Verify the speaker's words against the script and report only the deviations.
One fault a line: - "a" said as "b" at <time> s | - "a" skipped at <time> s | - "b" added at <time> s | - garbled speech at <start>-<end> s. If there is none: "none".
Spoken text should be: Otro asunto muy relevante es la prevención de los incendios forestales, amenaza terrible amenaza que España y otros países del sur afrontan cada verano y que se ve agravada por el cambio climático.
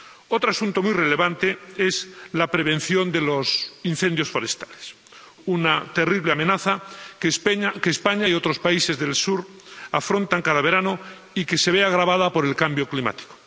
- "amenaza" said as "una" at 5.5 s